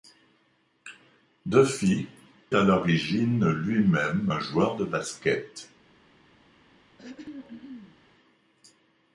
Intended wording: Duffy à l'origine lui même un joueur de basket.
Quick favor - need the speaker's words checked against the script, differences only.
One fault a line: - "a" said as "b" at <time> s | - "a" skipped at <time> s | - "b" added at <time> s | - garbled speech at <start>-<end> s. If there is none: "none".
none